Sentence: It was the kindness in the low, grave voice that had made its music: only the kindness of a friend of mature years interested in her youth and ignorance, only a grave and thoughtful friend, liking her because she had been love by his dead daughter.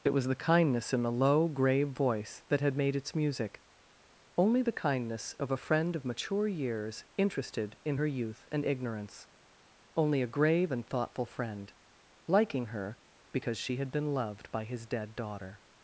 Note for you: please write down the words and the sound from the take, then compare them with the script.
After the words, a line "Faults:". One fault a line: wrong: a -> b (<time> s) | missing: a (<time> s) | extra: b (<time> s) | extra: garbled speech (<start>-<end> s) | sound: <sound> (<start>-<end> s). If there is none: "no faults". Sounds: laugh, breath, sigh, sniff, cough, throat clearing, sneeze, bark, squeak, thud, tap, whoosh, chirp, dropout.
It was the kindness in the low, grave voice that had made its music: only the kindness of a friend of mature years interested in her youth and ignorance, only a grave and thoughtful friend, liking her because she had been loved by his dead daughter.
Faults:
wrong: love -> loved (14.1 s)